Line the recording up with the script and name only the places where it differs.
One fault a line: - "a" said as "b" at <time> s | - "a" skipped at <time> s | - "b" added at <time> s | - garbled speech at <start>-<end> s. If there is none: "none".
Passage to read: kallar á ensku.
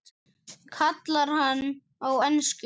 - "hann" added at 1.4 s